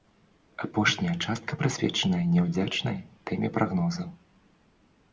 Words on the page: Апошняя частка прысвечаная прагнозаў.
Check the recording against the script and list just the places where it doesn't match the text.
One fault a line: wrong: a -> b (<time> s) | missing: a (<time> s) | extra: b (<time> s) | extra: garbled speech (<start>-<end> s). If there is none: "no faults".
extra: няўдзячнай тэме (2.4 s)